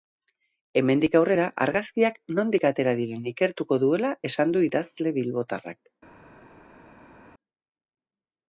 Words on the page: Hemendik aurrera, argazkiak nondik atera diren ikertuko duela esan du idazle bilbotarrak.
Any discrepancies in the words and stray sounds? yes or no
no